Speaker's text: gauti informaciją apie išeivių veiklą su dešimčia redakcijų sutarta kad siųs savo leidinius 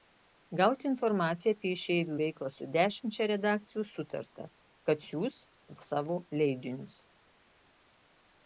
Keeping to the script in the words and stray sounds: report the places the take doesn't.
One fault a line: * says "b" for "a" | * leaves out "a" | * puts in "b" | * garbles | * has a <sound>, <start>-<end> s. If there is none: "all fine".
all fine